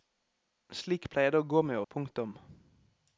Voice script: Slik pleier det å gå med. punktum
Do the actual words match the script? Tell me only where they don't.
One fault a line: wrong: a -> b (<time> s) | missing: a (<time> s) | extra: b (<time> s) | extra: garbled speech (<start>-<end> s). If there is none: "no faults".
no faults